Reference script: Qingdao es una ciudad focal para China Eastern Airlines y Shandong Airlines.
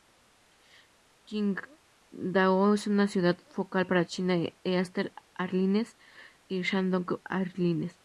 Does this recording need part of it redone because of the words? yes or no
no